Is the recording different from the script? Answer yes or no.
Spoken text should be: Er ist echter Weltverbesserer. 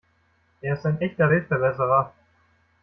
yes